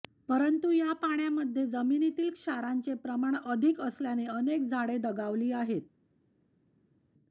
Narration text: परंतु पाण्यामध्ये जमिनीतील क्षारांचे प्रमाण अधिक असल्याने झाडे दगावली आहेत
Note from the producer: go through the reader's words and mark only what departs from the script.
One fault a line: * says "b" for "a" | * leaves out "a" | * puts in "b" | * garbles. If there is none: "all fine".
* puts in "या"
* puts in "अनेक"